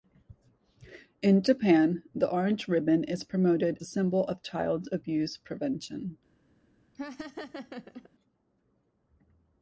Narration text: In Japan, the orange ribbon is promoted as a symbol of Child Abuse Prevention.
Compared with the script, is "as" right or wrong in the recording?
wrong